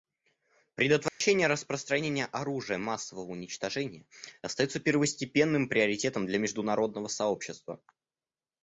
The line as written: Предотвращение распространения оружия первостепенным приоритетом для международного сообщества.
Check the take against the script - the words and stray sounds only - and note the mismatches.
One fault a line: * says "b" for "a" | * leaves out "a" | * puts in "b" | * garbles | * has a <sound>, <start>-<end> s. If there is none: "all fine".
* has a dropout, 1.1-1.2 s
* puts in "массового уничтожения остается"